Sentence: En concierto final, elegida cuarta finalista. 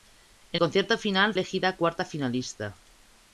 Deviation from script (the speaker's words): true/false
false